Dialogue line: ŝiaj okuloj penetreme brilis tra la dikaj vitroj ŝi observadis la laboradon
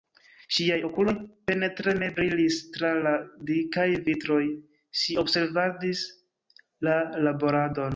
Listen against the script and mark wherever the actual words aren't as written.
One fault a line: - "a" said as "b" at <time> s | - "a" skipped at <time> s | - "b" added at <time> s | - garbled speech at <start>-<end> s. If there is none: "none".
none